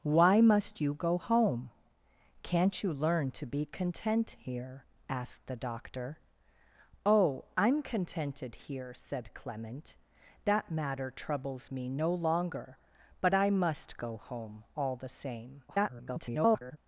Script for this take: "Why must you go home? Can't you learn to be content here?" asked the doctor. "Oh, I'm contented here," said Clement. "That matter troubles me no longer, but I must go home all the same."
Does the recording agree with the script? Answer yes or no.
no